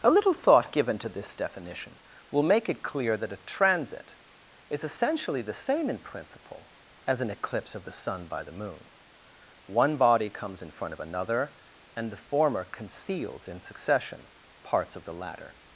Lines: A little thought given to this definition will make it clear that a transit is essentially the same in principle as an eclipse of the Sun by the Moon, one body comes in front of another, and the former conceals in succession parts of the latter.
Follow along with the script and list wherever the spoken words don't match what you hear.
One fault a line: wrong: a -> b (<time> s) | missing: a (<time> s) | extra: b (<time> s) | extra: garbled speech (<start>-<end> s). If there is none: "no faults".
no faults